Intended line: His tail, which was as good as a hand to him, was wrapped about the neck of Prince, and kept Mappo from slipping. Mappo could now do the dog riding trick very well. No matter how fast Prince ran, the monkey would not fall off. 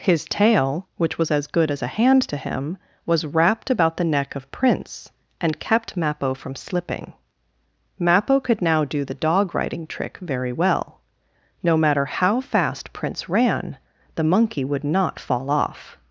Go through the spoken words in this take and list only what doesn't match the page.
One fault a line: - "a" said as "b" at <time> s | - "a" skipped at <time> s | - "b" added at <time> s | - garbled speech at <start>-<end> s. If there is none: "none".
none